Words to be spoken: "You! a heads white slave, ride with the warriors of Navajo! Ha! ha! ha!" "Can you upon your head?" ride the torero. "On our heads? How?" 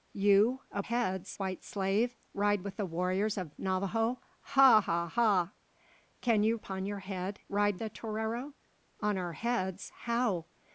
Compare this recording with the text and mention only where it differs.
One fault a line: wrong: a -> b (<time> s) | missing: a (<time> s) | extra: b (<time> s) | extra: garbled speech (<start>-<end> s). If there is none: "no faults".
no faults